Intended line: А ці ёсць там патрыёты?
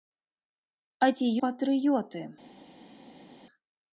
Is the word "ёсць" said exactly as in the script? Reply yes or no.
no